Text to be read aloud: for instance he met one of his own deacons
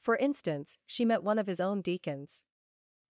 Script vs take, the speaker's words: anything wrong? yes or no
yes